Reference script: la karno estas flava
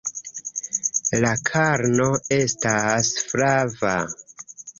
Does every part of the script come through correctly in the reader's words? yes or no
yes